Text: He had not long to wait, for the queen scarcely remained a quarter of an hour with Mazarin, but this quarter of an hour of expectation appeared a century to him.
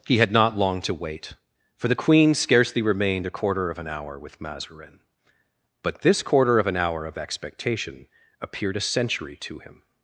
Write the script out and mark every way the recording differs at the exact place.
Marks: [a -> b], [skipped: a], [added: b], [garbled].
He had not long to wait, for the queen scarcely remained a quarter of an hour with Mazarin, but this quarter of an hour of expectation appeared a century to him.